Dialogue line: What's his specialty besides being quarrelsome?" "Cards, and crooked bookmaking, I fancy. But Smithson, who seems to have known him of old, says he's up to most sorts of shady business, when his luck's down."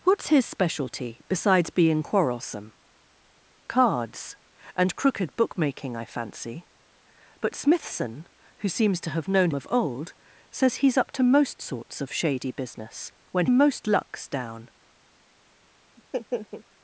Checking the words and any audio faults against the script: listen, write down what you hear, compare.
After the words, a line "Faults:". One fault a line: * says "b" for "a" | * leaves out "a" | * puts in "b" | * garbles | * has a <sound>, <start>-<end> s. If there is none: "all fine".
What's his specialty besides being quarrelsome?" "Cards, and crooked bookmaking, I fancy. But Smithson, who seems to have known of old, says he's up to most sorts of shady business, when most luck's down."
Faults:
* leaves out "him"
* says "most" for "his"
* has a laugh, 16.0-16.6 s